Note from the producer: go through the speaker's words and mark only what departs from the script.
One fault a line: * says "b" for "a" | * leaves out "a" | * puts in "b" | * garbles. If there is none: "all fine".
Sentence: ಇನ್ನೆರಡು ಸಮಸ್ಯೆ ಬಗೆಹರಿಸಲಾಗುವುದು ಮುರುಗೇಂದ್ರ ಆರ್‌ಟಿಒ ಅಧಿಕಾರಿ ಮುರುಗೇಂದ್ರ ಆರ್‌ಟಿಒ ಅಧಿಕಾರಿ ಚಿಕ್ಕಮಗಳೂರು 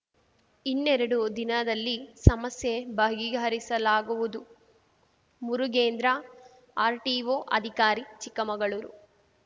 * puts in "ದಿನದಲ್ಲಿ"
* leaves out "ಮುರುಗೇಂದ್ರ ಆರ್‌ಟಿಒ ಅಧಿಕಾರಿ"